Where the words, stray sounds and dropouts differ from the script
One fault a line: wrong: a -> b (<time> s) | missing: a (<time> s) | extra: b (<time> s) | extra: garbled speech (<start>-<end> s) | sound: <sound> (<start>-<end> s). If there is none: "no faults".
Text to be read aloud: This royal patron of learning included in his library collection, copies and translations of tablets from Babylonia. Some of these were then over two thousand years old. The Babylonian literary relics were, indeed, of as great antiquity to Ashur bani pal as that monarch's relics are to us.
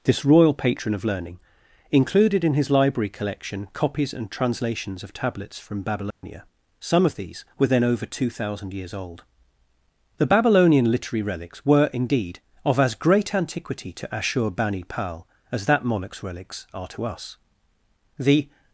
sound: dropout (6.1-6.2 s)
extra: The (18.2 s)